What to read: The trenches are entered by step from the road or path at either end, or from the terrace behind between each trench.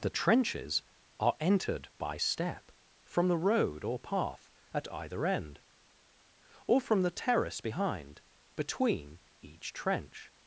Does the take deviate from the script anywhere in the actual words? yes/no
no